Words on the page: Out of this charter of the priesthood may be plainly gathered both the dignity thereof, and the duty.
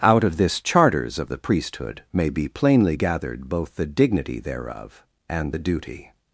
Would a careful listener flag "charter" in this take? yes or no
yes